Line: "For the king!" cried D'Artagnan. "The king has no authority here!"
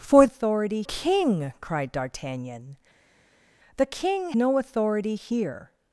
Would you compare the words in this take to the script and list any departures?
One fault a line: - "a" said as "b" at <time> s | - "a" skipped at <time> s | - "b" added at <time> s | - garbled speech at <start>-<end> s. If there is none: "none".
- "the" said as "authority" at 0.2 s
- "has" skipped at 4.3 s